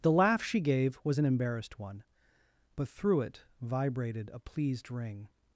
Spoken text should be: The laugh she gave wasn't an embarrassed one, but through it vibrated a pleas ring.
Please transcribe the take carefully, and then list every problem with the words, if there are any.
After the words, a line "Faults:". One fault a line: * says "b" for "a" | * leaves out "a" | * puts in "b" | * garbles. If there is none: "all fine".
The laugh she gave was an embarrassed one, but through it vibrated a pleased ring.
Faults:
* says "was" for "wasn't"
* says "pleased" for "pleas"